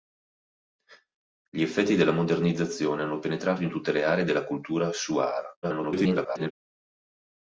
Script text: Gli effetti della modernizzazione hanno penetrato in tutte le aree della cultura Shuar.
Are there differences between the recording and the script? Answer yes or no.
yes